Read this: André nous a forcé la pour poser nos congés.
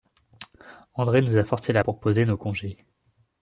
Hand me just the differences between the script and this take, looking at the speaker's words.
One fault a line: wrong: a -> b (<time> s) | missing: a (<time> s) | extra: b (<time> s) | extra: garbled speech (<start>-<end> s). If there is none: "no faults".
no faults